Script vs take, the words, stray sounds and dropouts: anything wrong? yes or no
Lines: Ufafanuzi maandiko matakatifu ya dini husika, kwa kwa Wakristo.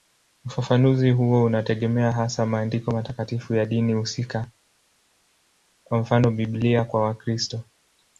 yes